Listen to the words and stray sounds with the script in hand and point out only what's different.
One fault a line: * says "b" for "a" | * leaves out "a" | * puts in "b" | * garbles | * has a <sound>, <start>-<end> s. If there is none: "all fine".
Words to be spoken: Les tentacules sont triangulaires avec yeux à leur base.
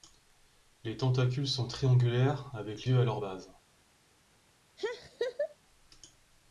* has a laugh, 4.8-5.6 s